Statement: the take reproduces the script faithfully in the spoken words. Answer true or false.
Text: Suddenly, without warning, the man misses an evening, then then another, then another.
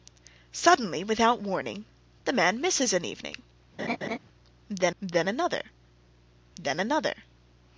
true